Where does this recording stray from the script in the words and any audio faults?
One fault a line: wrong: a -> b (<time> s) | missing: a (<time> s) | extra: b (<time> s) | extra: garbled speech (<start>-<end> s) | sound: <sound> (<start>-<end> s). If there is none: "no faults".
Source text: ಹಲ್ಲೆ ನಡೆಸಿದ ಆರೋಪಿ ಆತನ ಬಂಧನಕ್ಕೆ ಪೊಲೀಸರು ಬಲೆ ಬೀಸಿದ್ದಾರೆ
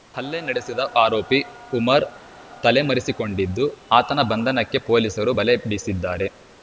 extra: ಉಮರ್ ತಲೆಮರೆಸಿಕೊಂಡಿದ್ದು (1.7 s)